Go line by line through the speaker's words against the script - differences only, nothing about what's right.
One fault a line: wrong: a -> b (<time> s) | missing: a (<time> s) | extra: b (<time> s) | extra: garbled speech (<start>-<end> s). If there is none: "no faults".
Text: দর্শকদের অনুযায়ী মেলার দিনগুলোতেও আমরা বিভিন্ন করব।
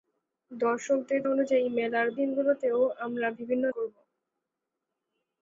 no faults